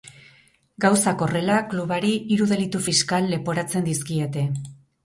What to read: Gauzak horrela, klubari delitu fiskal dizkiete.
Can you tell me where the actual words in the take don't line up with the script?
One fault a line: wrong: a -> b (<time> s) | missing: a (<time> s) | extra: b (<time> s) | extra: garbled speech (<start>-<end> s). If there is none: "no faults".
extra: hiru (2.4 s)
extra: leporatzen (3.4 s)